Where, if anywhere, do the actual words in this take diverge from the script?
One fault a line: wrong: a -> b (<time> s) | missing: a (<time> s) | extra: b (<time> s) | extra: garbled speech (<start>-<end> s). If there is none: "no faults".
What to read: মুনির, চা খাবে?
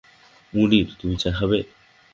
extra: তুমি (1.0 s)